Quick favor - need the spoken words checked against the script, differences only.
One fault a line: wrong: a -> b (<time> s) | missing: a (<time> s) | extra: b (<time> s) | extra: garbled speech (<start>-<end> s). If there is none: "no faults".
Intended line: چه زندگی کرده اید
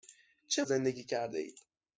no faults